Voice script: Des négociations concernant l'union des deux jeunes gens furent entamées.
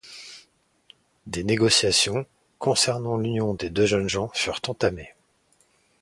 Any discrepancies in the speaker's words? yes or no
no